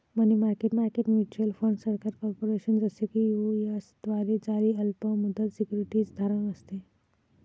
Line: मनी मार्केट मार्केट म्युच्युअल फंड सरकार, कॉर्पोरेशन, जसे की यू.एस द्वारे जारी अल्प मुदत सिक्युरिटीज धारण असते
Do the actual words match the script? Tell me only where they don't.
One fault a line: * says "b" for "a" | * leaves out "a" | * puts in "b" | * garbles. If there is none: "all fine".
all fine